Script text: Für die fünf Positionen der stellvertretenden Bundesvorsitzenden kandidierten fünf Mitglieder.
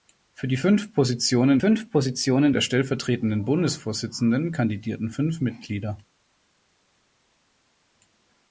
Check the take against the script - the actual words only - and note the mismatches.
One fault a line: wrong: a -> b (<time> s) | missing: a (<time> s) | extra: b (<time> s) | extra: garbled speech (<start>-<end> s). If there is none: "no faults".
extra: fünf Positionen (1.6 s)